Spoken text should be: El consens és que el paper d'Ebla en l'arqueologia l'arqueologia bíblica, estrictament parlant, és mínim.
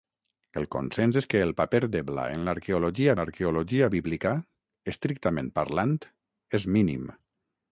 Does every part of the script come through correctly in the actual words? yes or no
yes